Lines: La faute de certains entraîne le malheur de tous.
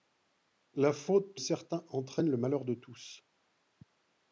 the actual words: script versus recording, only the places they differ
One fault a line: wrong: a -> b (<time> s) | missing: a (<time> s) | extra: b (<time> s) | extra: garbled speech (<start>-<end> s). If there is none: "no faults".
missing: de (1.4 s)